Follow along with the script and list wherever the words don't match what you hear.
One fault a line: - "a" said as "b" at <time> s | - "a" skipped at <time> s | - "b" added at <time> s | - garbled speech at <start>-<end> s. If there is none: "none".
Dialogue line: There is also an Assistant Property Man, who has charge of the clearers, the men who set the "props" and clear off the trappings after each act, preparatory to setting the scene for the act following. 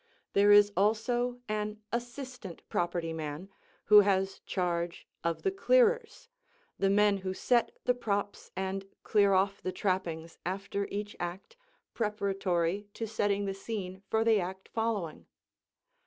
none